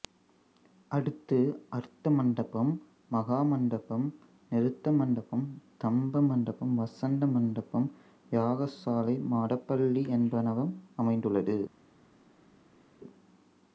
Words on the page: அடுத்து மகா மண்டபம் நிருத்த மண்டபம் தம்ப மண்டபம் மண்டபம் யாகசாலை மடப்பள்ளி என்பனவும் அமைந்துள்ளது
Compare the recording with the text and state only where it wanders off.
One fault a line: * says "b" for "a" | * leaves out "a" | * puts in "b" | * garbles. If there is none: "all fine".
* puts in "அர்த்த மண்டபம்"
* puts in "வசந்த"